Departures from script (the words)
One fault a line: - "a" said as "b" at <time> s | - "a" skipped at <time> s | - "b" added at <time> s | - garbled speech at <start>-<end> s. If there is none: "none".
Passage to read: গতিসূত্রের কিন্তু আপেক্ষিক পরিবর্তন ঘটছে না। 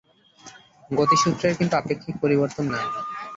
- "ঘটছে" skipped at 2.6 s